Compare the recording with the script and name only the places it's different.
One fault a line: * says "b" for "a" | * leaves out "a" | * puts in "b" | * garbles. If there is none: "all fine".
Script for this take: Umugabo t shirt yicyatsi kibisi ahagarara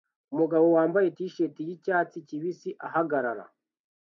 * puts in "wambaye"